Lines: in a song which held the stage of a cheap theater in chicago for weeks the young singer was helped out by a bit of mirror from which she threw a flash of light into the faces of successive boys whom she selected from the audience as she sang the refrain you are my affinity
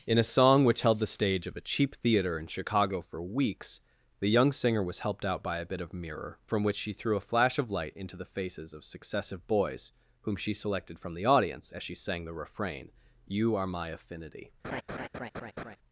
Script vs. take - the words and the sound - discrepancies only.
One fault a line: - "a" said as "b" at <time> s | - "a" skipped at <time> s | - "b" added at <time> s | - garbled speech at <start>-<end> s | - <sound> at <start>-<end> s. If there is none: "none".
- laugh at 14.6-15.8 s